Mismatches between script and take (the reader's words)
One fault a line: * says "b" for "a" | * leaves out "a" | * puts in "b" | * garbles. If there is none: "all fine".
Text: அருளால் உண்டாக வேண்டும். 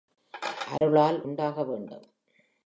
all fine